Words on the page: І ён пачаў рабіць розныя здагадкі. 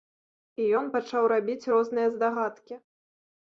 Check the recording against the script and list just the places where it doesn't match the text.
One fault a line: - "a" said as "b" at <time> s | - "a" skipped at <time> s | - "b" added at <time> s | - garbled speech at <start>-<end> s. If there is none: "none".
none